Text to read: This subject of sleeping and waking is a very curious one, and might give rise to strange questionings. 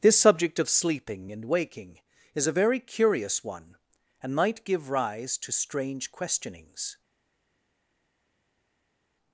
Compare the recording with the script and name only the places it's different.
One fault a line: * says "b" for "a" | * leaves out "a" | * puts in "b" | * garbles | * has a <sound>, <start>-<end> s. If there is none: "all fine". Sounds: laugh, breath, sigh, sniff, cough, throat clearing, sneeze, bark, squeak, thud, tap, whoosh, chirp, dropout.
all fine